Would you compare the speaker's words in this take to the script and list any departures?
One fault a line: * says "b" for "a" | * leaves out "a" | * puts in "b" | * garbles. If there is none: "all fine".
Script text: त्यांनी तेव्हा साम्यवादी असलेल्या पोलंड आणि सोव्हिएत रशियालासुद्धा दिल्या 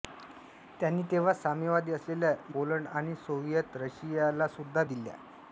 all fine